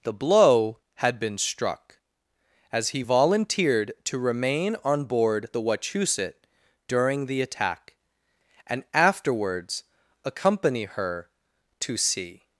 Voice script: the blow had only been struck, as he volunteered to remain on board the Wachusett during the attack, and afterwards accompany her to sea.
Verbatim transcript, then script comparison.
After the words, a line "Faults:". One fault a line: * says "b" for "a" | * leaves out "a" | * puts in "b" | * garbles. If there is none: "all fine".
the blow had been struck, as he volunteered to remain on board the Wachusett during the attack, and afterwards accompany her to sea.
Faults:
* leaves out "only"